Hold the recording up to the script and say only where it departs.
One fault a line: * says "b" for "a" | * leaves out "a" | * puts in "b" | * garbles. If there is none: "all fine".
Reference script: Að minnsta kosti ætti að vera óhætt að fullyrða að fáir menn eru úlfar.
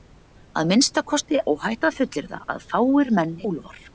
* leaves out "ætti að vera"
* leaves out "eru"